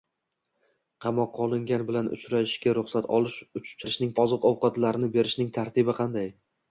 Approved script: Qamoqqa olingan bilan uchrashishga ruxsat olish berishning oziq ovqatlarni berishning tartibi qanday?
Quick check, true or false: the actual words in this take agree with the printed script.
true